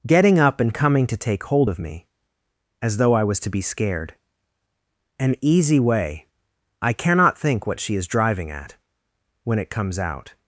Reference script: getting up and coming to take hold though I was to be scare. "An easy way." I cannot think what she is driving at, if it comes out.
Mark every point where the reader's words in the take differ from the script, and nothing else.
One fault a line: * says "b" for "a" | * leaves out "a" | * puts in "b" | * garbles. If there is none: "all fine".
* puts in "of me as"
* says "scared" for "scare"
* says "when" for "if"